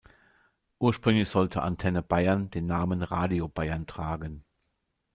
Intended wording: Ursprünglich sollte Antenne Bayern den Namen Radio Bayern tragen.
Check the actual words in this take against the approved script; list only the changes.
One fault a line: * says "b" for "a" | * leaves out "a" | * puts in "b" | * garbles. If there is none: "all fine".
all fine